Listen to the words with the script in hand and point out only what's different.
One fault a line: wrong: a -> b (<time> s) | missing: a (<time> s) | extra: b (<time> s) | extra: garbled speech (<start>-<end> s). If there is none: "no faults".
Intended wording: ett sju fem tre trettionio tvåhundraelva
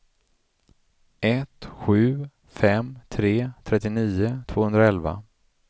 no faults